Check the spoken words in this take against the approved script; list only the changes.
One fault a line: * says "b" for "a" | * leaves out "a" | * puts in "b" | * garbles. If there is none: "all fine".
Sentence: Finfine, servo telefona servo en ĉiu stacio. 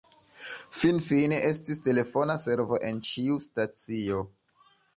* says "estis" for "servo"